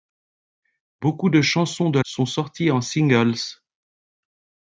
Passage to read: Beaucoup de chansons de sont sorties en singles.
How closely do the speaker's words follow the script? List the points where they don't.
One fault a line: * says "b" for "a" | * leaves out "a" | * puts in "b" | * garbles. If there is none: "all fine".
all fine